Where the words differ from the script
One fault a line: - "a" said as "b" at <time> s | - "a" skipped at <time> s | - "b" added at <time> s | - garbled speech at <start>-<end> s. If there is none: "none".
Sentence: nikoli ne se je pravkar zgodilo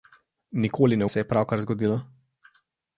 none